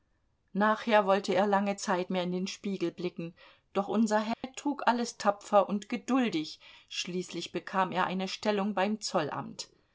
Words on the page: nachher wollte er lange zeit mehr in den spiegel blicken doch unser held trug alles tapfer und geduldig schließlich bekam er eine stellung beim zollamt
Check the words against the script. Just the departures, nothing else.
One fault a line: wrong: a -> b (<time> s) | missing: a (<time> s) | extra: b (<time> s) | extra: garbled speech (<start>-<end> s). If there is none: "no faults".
no faults